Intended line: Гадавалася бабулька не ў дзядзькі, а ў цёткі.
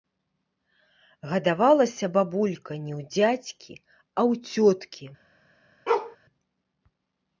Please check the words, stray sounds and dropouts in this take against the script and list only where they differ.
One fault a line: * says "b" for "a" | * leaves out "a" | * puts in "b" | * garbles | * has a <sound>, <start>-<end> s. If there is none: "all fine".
* has a bark, 5.9-6.2 s